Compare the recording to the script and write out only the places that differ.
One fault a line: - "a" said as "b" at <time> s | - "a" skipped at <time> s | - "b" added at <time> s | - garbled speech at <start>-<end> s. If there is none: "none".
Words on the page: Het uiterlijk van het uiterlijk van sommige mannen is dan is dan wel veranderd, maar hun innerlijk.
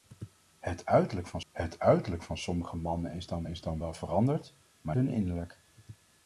none